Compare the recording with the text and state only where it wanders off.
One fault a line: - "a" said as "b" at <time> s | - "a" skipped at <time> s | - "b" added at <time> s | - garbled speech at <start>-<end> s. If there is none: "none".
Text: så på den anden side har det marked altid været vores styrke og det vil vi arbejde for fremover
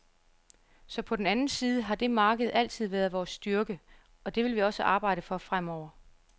- "også" added at 4.6 s